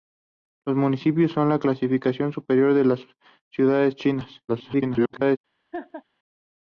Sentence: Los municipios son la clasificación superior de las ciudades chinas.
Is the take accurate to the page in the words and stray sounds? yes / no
no